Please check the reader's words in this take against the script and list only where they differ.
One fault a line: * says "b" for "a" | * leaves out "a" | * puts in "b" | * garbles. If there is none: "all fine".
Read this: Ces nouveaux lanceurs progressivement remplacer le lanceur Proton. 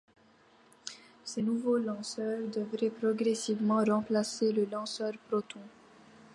* puts in "devraient"